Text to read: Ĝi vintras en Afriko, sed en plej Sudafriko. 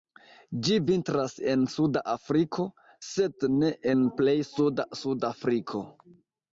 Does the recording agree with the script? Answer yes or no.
no